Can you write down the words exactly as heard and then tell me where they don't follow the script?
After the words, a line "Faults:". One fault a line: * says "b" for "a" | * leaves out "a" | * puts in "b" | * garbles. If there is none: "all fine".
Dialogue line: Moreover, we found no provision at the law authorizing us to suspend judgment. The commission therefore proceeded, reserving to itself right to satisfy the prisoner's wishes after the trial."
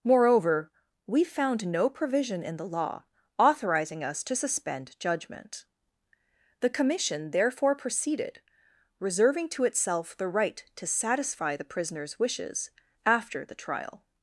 Moreover, we found no provision in the law authorizing us to suspend judgment. The commission therefore proceeded, reserving to itself the right to satisfy the prisoner's wishes after the trial."
Faults:
* says "in" for "at"
* puts in "the"